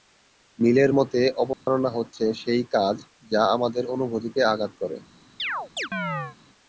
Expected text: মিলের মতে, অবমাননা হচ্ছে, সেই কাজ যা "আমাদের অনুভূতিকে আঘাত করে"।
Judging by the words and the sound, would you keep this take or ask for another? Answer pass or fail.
fail